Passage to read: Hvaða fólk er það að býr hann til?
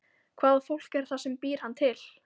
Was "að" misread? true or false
true